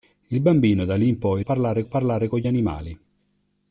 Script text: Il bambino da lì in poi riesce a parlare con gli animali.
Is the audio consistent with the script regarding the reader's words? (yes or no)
no